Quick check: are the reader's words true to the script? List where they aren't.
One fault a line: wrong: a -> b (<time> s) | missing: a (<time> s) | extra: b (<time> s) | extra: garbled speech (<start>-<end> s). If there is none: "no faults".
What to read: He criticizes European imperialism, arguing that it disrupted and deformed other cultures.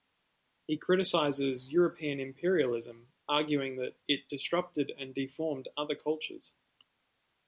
no faults